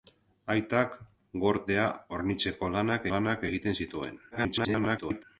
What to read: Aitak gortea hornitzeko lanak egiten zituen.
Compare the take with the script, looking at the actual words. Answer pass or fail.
fail